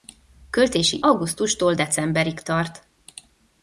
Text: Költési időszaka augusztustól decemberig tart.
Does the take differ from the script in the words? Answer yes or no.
yes